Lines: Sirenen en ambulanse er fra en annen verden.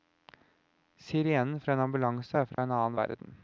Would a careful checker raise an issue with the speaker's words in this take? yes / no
yes